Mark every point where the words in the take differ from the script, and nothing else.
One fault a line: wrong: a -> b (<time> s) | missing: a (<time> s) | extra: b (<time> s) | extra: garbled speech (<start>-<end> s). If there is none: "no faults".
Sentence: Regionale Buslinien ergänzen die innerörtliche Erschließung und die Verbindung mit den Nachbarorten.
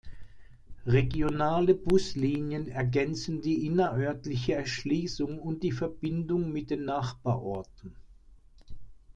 no faults